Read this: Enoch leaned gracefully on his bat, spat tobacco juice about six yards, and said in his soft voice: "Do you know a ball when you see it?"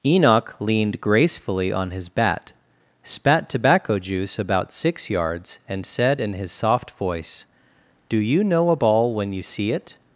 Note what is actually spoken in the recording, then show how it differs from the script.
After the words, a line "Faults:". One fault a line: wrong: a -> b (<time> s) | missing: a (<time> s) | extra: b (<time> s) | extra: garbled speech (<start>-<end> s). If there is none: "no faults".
Enoch leaned gracefully on his bat, spat tobacco juice about six yards, and said in his soft voice: "Do you know a ball when you see it?"
Faults:
no faults